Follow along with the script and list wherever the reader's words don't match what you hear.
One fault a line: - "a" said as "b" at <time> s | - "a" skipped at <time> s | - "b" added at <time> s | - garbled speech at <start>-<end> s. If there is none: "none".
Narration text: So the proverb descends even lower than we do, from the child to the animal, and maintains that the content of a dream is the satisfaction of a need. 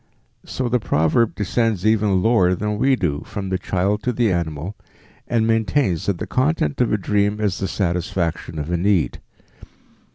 none